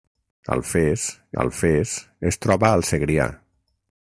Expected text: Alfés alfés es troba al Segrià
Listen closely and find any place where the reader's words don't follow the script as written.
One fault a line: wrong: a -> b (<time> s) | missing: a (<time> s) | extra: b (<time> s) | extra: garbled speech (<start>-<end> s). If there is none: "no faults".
no faults